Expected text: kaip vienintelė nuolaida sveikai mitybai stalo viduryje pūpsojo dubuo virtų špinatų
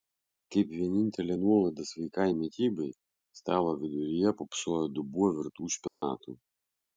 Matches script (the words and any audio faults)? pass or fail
fail